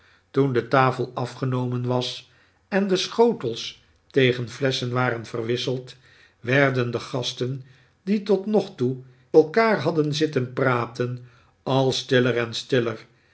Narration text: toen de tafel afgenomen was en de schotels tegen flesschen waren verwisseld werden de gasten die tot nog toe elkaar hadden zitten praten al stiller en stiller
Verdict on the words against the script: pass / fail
pass